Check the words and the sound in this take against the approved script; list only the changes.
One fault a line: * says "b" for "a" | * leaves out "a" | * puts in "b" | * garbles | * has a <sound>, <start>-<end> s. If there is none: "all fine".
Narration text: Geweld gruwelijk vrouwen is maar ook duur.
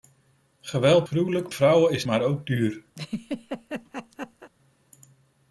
* has a laugh, 2.9-4.5 s